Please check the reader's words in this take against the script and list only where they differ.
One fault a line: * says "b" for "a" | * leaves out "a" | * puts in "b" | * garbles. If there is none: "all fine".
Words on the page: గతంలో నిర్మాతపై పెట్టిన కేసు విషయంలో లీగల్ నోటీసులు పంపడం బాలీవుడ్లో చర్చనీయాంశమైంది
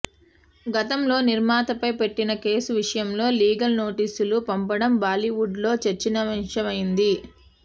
all fine